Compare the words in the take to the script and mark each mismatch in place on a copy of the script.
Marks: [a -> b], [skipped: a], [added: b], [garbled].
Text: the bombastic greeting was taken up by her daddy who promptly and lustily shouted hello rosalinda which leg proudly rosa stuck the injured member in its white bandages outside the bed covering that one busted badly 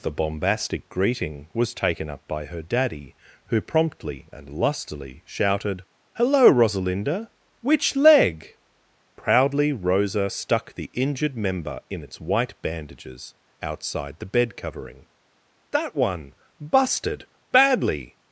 the bombastic greeting was taken up by her daddy who promptly and lustily shouted hello rosalinda which leg proudly rosa stuck the injured member in its white bandages outside the bed covering that one busted badly